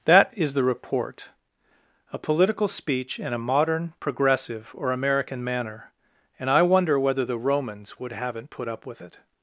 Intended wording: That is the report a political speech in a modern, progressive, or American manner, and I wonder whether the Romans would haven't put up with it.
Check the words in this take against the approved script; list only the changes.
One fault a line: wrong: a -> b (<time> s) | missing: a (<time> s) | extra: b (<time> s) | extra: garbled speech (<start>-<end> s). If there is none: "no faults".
no faults